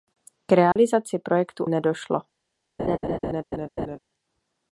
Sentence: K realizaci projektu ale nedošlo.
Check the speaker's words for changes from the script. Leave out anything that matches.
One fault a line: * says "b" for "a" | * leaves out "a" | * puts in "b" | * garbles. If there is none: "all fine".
* leaves out "ale"